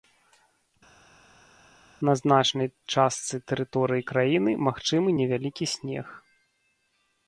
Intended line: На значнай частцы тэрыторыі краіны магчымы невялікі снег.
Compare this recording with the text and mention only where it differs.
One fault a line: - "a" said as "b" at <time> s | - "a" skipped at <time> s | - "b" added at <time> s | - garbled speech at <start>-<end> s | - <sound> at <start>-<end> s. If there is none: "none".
none